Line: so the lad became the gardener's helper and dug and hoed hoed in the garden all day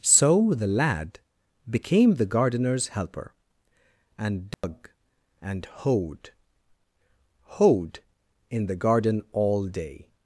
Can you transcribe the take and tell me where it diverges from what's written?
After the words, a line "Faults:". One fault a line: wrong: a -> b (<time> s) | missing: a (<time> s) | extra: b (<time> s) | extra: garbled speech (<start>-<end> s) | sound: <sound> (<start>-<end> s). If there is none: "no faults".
so the lad became the gardener's helper and dug and hoed hoed in the garden all day
Faults:
sound: dropout (4.5-4.6 s)